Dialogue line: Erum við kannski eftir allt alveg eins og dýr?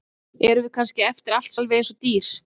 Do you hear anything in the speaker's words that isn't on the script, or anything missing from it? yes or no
no